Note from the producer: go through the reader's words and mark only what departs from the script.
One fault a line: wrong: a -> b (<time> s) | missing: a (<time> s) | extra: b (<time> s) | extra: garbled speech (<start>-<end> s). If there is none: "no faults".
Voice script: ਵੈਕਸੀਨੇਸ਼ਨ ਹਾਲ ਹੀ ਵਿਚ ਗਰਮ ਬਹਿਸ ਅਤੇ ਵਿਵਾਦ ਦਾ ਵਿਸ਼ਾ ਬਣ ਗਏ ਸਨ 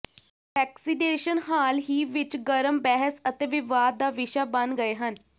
wrong: ਸਨ -> ਹਨ (5.0 s)